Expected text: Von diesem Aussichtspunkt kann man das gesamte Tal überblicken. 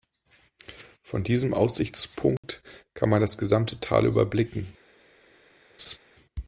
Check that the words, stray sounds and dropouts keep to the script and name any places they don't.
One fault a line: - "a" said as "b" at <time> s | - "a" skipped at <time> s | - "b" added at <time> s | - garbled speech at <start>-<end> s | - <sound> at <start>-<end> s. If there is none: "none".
- dropout at 2.4-2.4 s
- laugh at 5.8-6.0 s